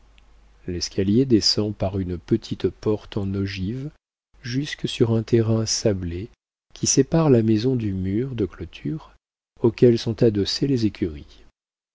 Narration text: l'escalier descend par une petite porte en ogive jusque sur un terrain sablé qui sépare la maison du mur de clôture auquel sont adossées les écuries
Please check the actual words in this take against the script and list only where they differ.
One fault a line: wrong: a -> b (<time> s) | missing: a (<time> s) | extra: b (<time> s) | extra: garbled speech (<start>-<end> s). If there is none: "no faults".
no faults